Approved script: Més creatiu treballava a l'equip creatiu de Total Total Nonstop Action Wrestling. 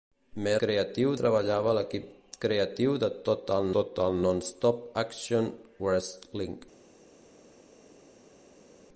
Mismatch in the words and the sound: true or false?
false